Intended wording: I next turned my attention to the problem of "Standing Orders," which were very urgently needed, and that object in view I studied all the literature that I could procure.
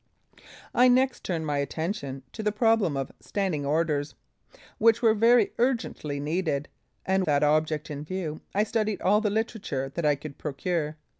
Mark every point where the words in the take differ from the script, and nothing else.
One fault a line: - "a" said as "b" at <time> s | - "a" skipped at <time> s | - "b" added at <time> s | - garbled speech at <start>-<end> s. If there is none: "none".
none